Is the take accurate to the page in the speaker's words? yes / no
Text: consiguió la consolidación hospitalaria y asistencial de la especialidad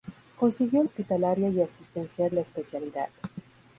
no